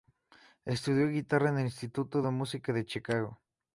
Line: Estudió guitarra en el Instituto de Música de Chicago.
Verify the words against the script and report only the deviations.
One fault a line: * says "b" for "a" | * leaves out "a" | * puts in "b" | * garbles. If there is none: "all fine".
all fine